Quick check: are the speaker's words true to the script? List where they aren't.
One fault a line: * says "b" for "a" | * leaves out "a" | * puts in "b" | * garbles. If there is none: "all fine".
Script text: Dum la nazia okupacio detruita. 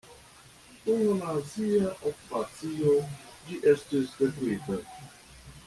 * puts in "ĝi estis"